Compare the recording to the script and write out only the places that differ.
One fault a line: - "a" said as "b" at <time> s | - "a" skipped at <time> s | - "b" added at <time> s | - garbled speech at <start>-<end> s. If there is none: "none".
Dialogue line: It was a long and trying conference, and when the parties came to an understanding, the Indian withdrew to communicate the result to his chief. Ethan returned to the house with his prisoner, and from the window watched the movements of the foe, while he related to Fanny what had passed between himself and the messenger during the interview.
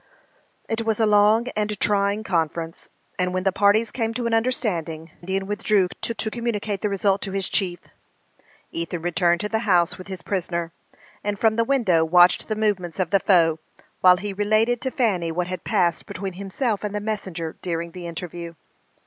- "the" skipped at 5.1 s
- "to" added at 6.2 s